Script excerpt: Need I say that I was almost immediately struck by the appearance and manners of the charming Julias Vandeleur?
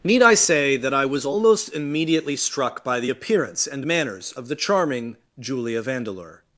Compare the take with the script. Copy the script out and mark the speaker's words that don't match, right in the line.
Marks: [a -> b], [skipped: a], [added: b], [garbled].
Need I say that I was almost immediately struck by the appearance and manners of the charming [Julias -> Julia] Vandeleur?